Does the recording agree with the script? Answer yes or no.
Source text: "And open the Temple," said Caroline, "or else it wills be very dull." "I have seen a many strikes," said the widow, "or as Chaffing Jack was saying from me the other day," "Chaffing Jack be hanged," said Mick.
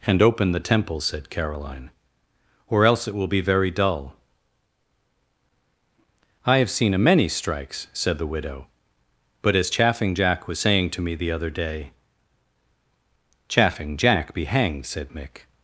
no